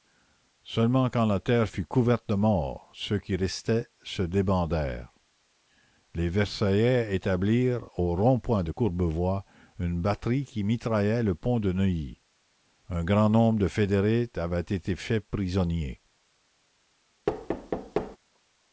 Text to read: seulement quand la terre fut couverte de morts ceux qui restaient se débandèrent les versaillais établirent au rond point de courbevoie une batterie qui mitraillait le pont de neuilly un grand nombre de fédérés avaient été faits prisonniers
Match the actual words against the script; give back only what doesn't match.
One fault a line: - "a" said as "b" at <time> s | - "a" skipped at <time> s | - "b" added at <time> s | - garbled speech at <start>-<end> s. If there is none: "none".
none